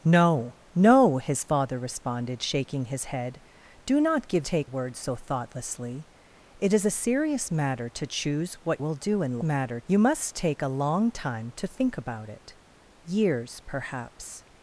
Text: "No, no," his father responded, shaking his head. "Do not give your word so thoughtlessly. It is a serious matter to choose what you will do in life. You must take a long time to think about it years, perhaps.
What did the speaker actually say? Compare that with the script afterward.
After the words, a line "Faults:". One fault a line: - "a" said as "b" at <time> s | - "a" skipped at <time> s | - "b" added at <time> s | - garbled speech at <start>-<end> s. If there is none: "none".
"No, no," his father responded, shaking his head. "Do not give take word so thoughtlessly. It is a serious matter to choose what will do in matter. You must take a long time to think about it years, perhaps.
Faults:
- "your" said as "take" at 4.4 s
- "you" skipped at 8.8 s
- "life" said as "matter" at 9.4 s